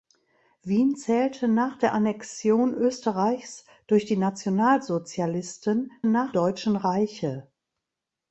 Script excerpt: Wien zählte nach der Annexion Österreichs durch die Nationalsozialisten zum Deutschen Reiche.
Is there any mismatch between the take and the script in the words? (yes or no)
yes